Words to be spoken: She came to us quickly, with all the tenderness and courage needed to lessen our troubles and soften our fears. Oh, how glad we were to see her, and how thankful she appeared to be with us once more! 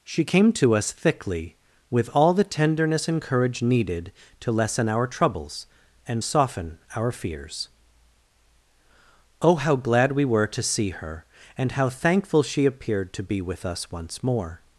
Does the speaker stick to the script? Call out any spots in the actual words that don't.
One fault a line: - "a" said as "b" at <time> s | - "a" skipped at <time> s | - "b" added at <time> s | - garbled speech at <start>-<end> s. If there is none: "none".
- "quickly" said as "thickly" at 0.9 s